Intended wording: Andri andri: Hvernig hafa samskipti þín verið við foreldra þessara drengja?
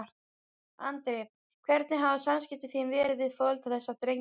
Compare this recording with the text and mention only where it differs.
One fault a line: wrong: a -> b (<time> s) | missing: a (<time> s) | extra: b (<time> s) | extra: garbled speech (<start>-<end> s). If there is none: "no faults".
missing: andri (1.2 s)